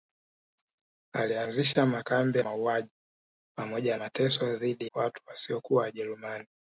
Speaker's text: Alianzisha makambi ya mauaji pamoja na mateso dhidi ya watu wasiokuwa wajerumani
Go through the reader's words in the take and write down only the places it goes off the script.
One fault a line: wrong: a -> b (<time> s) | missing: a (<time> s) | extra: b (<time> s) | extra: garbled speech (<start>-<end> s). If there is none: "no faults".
missing: ya (2.4 s)
missing: na (4.0 s)
missing: ya (4.9 s)